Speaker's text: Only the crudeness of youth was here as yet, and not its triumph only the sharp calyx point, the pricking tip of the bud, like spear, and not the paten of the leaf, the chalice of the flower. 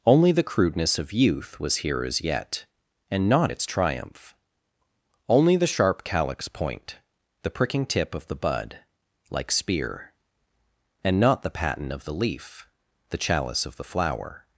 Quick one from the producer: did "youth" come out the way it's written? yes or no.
yes